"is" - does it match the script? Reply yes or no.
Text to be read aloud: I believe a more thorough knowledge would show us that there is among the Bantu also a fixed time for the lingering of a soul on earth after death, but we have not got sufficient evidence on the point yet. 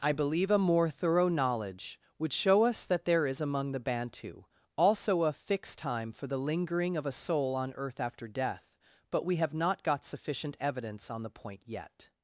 yes